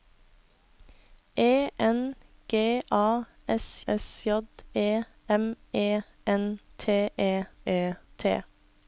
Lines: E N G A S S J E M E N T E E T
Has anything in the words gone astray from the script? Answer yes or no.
no